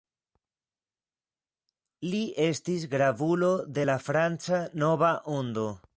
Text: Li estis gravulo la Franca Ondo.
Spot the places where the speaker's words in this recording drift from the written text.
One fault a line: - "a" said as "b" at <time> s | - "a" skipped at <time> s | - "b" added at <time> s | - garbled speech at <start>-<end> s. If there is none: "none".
- "de" added at 3.7 s
- "Nova" added at 4.7 s